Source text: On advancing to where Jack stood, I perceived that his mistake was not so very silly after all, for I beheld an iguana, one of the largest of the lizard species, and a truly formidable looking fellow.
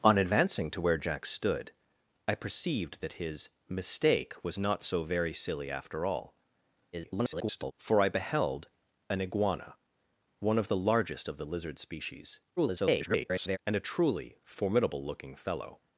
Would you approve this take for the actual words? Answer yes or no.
no